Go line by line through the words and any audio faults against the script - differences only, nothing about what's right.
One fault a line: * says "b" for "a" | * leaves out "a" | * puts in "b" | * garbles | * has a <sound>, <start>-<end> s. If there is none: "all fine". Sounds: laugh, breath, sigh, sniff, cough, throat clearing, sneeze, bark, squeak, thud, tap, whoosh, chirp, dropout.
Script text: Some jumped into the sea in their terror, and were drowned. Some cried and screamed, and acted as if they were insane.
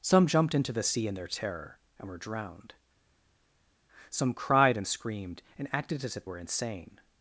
* leaves out "they"